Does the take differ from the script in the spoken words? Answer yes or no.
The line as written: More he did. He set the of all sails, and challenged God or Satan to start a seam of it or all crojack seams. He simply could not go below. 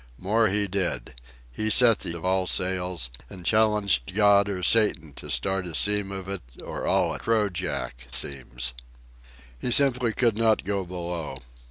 no